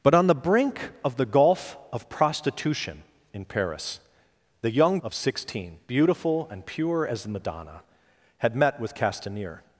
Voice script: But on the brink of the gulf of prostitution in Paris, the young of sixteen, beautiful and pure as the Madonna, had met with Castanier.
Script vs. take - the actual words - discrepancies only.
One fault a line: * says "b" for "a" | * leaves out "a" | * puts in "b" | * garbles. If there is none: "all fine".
all fine